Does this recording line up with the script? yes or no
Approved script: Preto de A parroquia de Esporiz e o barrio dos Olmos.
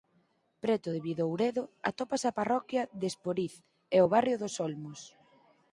no